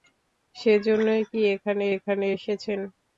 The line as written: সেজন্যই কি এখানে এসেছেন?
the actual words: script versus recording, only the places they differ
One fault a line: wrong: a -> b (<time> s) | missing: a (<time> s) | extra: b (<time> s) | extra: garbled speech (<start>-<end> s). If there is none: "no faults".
extra: এখানে (1.9 s)